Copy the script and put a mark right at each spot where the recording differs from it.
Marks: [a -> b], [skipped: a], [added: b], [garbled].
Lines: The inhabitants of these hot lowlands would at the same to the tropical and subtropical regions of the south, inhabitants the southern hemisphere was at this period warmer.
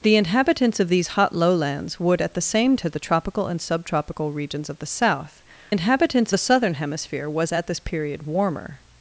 The inhabitants of these hot lowlands would at the same to the tropical and subtropical regions of the south, inhabitants the southern hemisphere was at this period warmer.